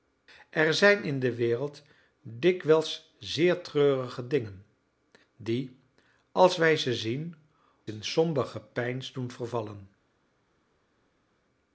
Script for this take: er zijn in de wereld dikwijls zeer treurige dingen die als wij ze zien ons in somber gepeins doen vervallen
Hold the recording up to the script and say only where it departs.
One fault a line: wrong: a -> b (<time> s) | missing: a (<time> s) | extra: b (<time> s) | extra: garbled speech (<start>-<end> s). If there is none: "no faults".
missing: ons (7.3 s)